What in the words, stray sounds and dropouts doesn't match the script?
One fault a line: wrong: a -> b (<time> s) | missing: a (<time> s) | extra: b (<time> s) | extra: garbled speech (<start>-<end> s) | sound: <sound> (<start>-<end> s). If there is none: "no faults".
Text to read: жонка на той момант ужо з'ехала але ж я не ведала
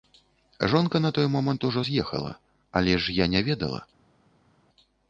no faults